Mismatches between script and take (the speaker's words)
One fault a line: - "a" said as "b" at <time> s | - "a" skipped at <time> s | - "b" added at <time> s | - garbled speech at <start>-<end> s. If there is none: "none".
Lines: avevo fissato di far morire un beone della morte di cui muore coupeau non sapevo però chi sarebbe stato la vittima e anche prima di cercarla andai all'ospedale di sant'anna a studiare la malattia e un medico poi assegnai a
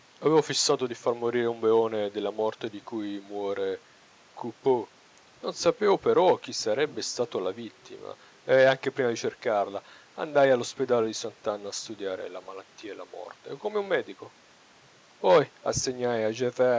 - "la morte come" added at 12.9 s